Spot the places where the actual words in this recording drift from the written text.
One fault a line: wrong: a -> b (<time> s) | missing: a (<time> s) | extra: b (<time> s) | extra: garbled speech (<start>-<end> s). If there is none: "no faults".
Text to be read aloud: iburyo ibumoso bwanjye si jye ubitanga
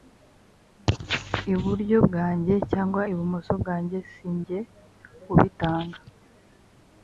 extra: bwanjye cyangwa (2.1 s)